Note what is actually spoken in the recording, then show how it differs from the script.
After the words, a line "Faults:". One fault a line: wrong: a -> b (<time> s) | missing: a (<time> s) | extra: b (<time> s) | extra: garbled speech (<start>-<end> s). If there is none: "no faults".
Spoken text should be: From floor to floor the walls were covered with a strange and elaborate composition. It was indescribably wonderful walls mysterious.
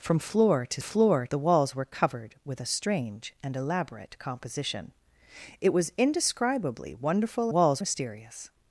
From floor to floor the walls were covered with a strange and elaborate composition. It was indescribably wonderful walls mysterious.
Faults:
no faults